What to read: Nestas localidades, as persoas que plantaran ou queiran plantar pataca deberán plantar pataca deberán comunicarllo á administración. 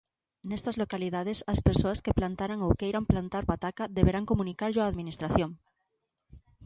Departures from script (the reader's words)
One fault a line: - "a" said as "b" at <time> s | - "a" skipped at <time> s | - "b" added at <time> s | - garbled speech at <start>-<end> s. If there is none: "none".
- "plantar pataca deberán" skipped at 4.3 s